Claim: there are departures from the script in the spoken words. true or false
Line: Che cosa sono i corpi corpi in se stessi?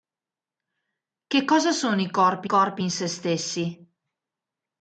false